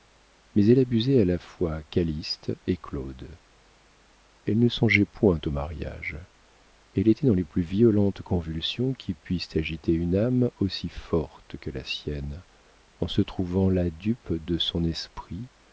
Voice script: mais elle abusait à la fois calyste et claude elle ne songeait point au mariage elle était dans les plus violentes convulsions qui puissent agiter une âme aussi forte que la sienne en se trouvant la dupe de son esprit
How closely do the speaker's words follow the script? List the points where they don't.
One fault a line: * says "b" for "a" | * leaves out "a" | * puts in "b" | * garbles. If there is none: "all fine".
all fine